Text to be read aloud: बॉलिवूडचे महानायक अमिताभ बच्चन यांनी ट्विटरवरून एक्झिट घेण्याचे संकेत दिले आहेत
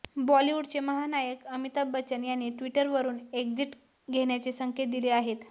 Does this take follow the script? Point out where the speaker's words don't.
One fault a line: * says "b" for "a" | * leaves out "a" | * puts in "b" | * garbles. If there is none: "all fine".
all fine